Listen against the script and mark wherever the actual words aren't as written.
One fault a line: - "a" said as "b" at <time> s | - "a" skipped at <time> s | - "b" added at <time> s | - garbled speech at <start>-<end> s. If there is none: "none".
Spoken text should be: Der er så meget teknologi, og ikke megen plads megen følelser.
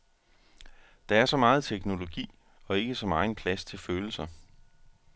- "så" added at 2.9 s
- "megen" said as "til" at 3.6 s